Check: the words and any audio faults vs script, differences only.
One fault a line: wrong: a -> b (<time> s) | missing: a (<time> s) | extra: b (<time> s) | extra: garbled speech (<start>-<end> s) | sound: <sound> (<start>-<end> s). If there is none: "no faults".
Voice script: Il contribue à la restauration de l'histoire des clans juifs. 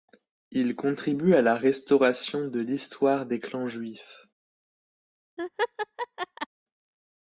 sound: laugh (5.4-6.5 s)